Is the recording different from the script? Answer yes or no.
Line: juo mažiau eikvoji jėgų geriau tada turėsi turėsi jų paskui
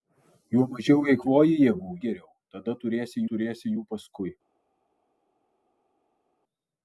no